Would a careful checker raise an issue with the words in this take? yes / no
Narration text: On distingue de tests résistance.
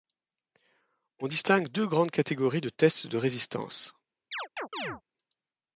yes